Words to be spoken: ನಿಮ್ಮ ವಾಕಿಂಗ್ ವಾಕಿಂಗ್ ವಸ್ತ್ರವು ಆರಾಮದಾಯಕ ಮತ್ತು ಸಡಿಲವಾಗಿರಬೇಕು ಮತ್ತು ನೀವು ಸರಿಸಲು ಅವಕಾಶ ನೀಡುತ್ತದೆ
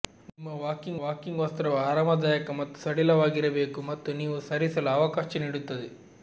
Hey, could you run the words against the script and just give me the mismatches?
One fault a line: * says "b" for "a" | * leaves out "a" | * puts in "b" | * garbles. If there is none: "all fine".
all fine